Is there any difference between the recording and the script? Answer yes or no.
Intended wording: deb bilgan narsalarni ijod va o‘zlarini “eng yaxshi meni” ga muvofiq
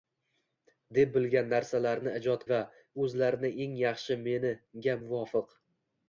no